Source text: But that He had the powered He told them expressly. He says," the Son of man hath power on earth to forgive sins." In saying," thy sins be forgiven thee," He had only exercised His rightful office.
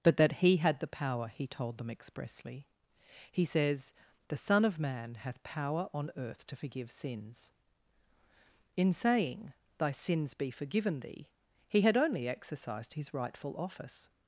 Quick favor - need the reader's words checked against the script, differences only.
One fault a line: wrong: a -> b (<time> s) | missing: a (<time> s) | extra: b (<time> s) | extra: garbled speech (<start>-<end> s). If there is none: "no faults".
wrong: powered -> power (0.9 s)